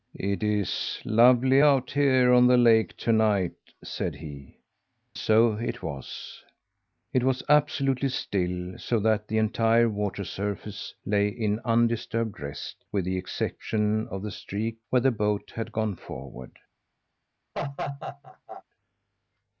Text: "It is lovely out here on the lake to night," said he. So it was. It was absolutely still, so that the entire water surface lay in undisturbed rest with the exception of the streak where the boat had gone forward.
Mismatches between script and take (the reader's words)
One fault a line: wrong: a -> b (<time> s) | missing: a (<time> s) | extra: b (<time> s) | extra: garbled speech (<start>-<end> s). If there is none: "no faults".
no faults